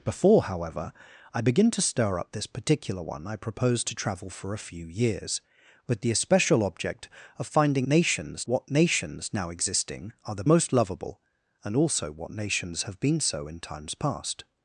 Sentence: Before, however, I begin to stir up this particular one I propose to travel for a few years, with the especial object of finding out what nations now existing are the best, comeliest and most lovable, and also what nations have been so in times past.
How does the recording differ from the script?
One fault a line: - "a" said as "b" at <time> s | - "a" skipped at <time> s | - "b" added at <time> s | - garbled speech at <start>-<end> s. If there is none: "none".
- "out" said as "nations" at 7.9 s
- "best comeliest and" skipped at 10.4 s